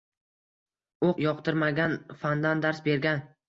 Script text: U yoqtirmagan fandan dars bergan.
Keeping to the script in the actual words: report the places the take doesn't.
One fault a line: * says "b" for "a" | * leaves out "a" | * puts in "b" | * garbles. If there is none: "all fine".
all fine